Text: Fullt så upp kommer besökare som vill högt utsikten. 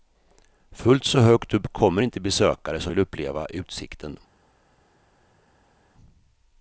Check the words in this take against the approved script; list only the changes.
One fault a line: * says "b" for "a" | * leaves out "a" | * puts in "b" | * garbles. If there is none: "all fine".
* puts in "högt"
* puts in "inte"
* says "uppleva" for "högt"